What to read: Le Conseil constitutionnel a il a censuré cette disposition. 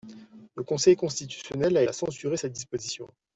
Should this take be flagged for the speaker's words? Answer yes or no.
no